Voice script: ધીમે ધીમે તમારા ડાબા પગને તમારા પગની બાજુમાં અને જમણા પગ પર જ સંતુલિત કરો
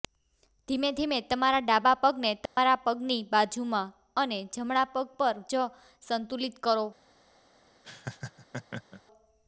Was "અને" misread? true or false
false